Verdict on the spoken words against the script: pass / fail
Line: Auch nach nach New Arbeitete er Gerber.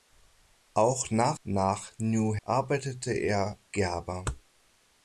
pass